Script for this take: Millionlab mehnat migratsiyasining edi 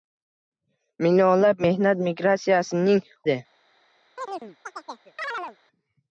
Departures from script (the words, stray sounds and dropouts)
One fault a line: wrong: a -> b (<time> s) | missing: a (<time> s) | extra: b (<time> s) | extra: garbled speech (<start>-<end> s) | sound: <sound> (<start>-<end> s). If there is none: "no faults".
sound: chirp (4.2-5.6 s)